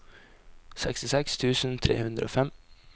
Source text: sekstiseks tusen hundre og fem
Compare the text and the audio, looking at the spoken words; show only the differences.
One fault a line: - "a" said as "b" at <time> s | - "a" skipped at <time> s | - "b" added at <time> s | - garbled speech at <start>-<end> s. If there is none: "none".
- "tre" added at 1.9 s